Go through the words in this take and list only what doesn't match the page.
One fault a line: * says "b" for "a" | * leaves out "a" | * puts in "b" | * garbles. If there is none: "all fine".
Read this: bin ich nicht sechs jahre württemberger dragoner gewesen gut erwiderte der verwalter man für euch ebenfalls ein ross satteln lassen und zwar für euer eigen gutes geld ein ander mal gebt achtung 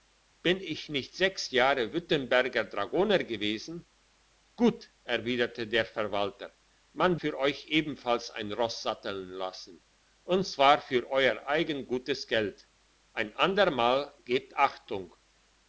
all fine